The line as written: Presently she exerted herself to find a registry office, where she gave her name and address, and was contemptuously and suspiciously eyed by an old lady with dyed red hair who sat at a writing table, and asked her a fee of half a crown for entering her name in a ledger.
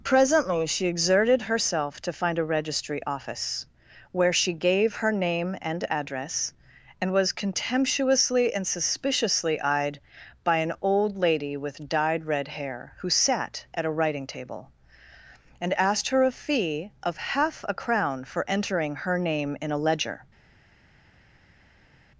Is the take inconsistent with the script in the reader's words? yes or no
no